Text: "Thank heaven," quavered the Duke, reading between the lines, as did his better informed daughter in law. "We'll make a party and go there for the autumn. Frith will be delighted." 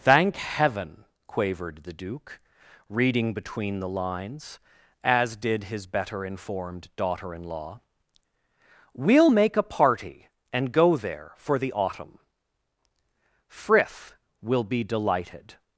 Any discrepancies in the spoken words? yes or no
no